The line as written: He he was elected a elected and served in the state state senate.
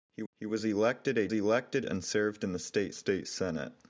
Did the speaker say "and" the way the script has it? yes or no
yes